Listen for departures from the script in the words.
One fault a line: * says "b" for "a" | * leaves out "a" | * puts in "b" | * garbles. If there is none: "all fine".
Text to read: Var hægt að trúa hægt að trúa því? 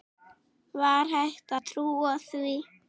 * leaves out "hægt að trúa"